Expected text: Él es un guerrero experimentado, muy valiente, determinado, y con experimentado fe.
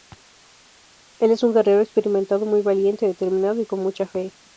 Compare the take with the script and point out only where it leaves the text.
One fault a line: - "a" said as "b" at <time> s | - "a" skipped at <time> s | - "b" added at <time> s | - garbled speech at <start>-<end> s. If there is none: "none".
- "experimentado" said as "mucha" at 3.8 s